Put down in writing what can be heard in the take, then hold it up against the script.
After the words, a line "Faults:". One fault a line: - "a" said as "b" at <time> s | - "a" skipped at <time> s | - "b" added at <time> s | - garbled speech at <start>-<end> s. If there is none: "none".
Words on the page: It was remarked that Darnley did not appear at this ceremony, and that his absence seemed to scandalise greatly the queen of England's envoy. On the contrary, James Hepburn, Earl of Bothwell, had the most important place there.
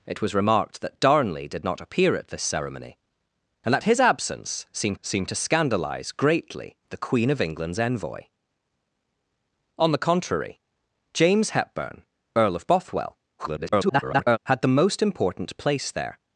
It was remarked that Darnley did not appear at this ceremony, and that his absence seemed seemed to scandalise greatly the queen of England's envoy. On the contrary, James Hepburn, Earl of Bothwell, [garbled] had the most important place there.
Faults:
- "seemed" added at 5.0 s
- garbled speech at 13.4-14.4 s